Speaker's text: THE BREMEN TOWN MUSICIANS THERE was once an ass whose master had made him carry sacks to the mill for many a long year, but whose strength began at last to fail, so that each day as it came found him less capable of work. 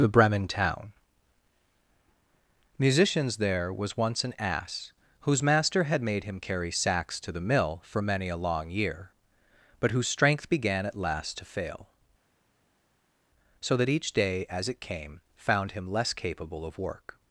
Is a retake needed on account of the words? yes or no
no